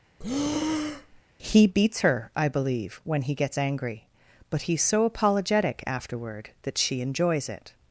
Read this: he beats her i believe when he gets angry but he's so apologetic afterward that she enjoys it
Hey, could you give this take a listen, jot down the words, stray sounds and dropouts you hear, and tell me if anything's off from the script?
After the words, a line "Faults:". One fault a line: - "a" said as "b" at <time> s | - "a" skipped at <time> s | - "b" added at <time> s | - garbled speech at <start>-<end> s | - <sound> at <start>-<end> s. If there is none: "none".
he beats her i believe when he gets angry but he's so apologetic afterward that she enjoys it
Faults:
- breath at 0.2-1.2 s